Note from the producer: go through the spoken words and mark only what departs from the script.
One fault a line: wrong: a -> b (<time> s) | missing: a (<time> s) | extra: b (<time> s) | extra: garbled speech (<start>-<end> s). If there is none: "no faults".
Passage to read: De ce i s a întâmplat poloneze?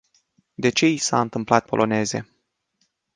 no faults